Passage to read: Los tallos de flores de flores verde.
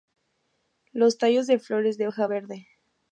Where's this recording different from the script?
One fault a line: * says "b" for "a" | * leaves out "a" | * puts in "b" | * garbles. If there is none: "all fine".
* says "hoja" for "flores"